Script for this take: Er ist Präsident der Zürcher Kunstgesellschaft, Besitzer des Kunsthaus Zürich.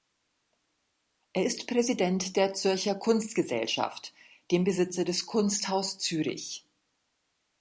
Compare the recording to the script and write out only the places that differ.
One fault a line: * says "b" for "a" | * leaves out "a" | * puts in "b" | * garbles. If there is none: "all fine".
* puts in "dem"